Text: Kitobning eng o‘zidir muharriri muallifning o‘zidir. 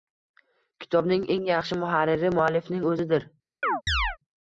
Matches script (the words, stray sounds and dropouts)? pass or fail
fail